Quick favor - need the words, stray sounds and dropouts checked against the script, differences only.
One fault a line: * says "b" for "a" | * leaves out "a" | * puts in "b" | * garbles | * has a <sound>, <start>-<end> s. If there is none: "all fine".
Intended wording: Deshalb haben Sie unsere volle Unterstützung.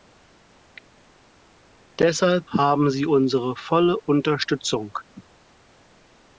all fine